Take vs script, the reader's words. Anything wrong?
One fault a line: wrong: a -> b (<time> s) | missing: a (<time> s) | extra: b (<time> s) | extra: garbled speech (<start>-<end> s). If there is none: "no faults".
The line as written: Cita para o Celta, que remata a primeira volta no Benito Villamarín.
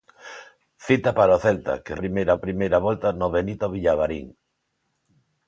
wrong: remata -> primeira (2.0 s)